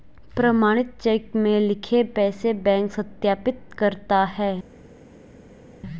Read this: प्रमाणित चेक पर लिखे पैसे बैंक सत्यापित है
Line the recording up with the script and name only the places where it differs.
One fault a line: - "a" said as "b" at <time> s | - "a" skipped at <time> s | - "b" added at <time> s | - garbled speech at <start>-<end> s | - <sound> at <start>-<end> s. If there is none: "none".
- "पर" said as "में" at 1.4 s
- "करता" added at 3.8 s